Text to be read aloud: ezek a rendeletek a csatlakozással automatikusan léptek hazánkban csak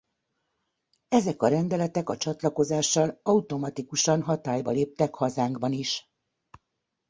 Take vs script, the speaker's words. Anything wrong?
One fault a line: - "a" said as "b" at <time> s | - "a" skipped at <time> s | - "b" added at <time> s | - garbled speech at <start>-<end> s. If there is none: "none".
- "hatályba" added at 4.2 s
- "csak" said as "is" at 5.7 s